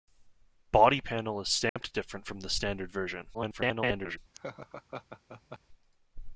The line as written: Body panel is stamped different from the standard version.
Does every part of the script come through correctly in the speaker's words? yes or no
no